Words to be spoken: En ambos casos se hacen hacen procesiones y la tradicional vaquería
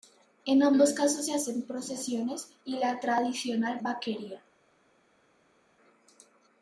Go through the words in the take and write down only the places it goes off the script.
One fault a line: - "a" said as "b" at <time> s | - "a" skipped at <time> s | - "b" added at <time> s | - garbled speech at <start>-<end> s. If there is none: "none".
- "hacen" skipped at 1.6 s